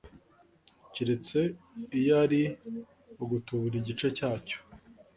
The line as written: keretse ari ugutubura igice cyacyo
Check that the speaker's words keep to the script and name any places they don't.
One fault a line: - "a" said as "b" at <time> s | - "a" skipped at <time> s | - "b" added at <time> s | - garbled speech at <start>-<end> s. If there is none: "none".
- "iyo" added at 2.0 s